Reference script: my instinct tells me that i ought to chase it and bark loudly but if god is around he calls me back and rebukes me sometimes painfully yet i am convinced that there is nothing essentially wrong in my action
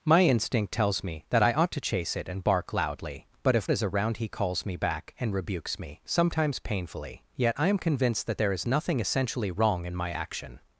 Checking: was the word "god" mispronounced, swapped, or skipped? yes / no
yes